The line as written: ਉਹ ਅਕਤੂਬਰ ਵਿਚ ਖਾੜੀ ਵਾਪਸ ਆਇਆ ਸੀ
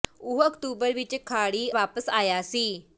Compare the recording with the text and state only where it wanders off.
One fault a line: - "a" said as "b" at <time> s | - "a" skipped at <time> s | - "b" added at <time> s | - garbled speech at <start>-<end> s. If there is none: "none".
none